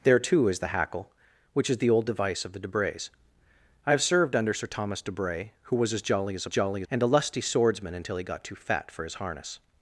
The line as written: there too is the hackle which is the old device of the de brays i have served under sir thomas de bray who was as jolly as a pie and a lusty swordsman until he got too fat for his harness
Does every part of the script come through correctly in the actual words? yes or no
no